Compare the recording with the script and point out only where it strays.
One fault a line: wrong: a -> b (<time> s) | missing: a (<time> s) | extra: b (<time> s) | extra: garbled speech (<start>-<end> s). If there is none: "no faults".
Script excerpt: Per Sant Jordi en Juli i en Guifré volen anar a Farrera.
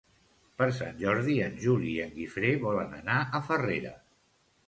no faults